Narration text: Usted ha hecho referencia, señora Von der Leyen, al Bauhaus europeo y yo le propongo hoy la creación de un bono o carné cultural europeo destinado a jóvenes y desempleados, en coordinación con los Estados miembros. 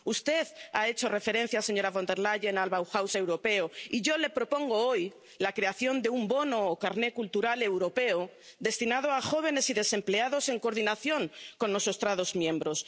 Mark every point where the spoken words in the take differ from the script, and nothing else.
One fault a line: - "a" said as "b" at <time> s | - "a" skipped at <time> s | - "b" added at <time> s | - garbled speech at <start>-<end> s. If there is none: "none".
none